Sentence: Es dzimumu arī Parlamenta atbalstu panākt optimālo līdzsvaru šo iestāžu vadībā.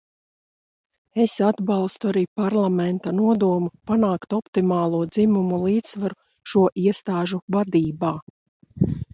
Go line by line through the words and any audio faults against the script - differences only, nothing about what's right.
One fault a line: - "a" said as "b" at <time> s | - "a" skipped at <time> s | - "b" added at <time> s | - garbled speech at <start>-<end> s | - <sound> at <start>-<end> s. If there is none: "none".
- "dzimumu" said as "atbalstu" at 1.5 s
- "atbalstu" said as "nodomu" at 3.2 s
- "dzimumu" added at 5.1 s